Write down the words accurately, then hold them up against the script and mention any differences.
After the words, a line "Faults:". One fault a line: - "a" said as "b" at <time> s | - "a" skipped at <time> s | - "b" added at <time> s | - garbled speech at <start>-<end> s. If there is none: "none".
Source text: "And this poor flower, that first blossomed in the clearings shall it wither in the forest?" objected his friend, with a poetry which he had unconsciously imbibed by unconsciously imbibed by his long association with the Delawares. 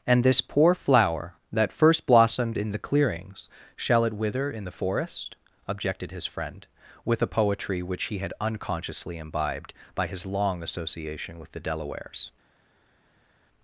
"And this poor flower, that first blossomed in the clearings shall it wither in the forest?" objected his friend, with a poetry which he had unconsciously imbibed by his long association with the Delawares.
Faults:
- "unconsciously imbibed by" skipped at 10.1 s